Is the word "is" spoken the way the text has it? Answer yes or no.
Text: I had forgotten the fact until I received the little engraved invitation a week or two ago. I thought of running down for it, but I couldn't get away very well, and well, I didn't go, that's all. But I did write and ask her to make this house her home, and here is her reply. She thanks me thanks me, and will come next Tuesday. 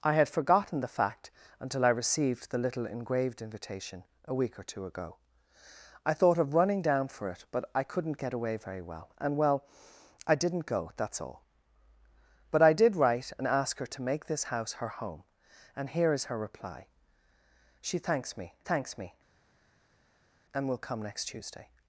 yes